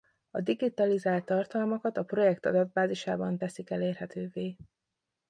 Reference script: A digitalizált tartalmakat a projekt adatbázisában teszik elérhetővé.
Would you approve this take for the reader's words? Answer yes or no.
yes